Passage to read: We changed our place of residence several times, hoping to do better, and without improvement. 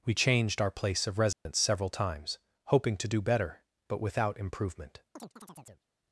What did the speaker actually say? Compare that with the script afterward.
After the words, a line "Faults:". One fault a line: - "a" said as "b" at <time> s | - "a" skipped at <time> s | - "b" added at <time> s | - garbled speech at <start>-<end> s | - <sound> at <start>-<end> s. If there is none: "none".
We changed our place of residence several times, hoping to do better, but without improvement.
Faults:
- dropout at 1.3-1.5 s
- "and" said as "but" at 3.9 s
- chirp at 5.2-5.9 s